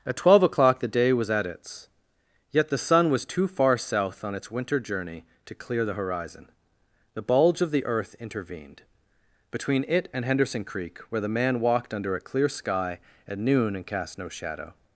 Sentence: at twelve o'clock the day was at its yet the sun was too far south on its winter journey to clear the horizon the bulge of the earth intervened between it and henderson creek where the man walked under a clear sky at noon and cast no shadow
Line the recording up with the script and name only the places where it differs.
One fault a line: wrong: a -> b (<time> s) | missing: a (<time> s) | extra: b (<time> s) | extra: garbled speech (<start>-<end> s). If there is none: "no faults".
no faults